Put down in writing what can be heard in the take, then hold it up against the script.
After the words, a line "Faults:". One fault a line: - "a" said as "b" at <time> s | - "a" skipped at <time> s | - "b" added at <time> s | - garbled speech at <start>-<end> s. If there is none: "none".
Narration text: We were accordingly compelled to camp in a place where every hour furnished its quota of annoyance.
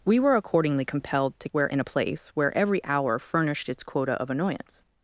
We were accordingly compelled to where in a place where every hour furnished its quota of annoyance.
Faults:
- "camp" said as "where" at 1.5 s